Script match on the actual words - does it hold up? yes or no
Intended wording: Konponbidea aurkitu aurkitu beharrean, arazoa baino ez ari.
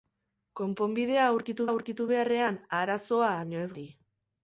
yes